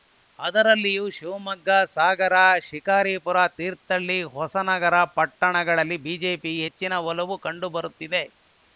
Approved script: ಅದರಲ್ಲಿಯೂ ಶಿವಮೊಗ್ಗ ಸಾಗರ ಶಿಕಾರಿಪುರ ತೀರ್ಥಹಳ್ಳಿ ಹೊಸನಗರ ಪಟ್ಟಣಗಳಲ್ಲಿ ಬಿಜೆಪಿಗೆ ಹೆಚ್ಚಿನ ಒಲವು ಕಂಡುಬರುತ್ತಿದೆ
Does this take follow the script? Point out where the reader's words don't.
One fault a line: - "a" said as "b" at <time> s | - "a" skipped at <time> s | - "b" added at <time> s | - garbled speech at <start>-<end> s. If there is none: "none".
none